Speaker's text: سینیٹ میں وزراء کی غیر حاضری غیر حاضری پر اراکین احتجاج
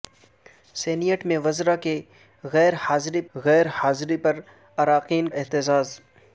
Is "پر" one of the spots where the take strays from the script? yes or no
no